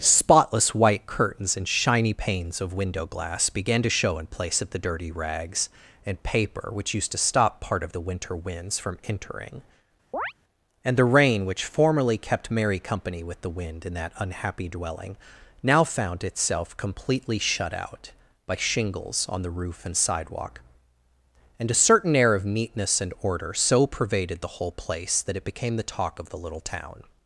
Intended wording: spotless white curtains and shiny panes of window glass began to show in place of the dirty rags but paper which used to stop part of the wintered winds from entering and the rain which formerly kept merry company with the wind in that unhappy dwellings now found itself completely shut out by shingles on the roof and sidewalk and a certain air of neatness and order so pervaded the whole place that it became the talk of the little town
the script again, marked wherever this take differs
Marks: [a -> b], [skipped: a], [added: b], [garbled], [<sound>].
spotless white curtains and shiny panes of window glass began to show in place of the dirty rags [but -> and] paper which used to stop part of the [wintered -> winter] winds from entering [chirp] and the rain which formerly kept merry company with the wind in that unhappy [dwellings -> dwelling] now found itself completely shut out by shingles on the roof and sidewalk and a certain air of neatness and order so pervaded the whole place that it became the talk of the little town